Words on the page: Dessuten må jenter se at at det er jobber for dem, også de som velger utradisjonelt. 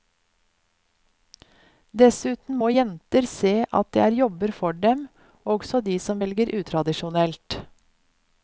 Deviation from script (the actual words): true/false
true